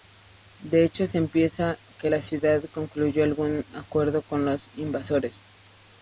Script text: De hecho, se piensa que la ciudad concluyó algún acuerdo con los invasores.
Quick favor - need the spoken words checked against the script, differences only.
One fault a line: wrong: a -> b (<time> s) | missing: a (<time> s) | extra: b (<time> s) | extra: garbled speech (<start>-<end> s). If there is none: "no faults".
no faults